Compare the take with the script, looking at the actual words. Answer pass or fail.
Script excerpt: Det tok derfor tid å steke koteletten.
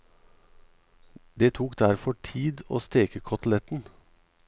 pass